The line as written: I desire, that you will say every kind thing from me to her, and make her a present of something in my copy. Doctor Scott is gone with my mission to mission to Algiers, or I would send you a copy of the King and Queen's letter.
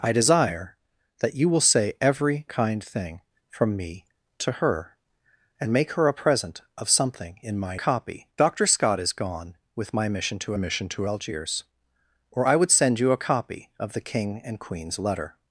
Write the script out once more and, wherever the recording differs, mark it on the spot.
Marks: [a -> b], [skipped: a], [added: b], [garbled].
I desire, that you will say every kind thing from me to her, and make her a present of something in my copy. Doctor Scott is gone with my mission to mission to Algiers, or I would send you a copy of the King and Queen's letter.